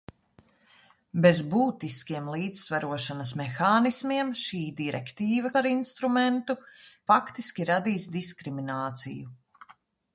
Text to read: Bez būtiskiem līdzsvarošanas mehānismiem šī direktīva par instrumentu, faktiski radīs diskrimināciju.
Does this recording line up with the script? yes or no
yes